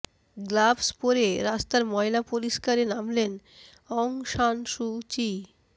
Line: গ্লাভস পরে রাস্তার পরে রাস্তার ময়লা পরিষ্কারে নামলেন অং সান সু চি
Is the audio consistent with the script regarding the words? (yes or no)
no